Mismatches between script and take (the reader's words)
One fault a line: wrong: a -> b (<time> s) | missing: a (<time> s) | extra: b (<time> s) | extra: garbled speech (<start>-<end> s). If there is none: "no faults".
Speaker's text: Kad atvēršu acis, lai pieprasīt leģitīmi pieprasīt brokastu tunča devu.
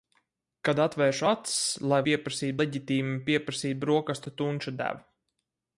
no faults